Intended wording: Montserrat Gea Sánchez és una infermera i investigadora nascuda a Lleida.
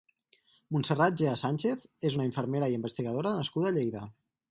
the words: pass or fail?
pass